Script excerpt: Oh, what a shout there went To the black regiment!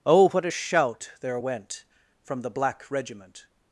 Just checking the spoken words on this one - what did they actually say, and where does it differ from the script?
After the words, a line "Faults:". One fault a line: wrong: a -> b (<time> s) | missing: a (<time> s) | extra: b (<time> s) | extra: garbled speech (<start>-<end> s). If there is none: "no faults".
Oh, what a shout there went From the black regiment!
Faults:
wrong: To -> From (2.2 s)